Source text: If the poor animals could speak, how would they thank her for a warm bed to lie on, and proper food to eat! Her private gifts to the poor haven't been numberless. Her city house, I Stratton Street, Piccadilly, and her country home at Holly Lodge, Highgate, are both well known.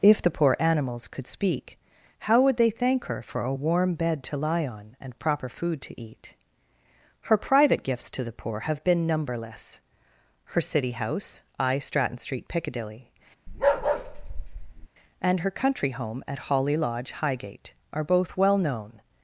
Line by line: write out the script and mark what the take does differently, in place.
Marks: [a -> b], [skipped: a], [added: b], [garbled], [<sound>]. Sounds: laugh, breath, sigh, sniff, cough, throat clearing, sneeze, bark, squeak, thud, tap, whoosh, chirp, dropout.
If the poor animals could speak, how would they thank her for a warm bed to lie on, and proper food to eat! Her private gifts to the poor [haven't -> have] been numberless. Her city house, I Stratton Street, Piccadilly, [bark] and her country home at Holly Lodge, Highgate, are both well known.